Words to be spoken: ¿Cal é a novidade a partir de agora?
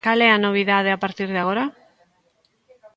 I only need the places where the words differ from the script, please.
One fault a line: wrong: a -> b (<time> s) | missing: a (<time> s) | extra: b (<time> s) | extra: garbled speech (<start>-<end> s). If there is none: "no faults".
no faults